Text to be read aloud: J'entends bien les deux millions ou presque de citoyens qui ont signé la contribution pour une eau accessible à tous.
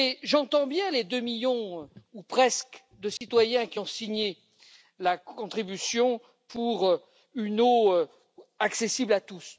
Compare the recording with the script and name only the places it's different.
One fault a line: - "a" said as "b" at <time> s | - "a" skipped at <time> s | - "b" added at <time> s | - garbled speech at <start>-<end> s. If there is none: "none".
none